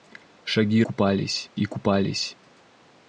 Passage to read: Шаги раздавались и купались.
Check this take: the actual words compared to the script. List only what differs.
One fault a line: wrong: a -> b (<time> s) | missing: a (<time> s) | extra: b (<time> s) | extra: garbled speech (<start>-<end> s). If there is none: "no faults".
wrong: раздавались -> купались (0.8 s)